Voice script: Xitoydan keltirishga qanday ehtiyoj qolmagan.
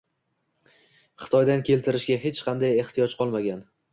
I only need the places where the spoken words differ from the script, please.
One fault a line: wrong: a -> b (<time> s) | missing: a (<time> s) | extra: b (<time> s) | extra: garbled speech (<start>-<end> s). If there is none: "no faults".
extra: hech (2.2 s)